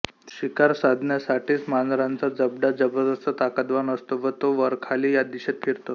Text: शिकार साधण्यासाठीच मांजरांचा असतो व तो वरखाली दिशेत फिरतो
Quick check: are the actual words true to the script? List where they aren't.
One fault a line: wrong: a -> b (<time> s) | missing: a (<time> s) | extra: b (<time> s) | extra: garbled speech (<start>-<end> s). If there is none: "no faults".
extra: जबडा जबरदस्त ताकदवान (2.4 s)
extra: या (5.1 s)